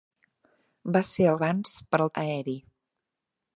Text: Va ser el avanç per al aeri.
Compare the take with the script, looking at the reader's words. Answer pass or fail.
pass